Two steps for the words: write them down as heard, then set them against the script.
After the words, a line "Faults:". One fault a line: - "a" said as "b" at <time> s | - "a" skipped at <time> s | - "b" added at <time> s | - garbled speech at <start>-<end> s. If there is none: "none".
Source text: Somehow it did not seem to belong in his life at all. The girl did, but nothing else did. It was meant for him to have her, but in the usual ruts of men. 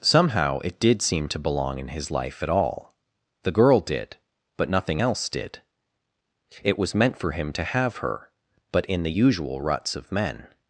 Somehow it did seem to belong in his life at all. The girl did, but nothing else did. It was meant for him to have her, but in the usual ruts of men.
Faults:
- "not" skipped at 1.0 s